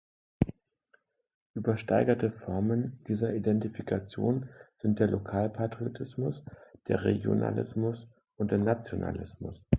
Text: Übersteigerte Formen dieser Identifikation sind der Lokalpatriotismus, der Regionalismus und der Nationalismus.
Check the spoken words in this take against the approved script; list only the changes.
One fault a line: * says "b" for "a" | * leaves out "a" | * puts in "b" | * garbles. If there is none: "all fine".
all fine